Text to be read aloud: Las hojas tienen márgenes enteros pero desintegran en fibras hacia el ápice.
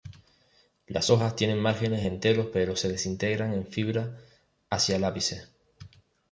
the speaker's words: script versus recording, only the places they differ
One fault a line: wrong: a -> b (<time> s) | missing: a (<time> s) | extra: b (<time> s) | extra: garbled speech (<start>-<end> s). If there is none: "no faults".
extra: se (2.7 s)